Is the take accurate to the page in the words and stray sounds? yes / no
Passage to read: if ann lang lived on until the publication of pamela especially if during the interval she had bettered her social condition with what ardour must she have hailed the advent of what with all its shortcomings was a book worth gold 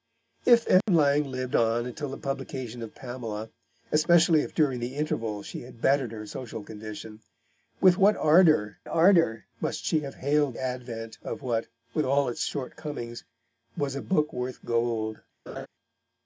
no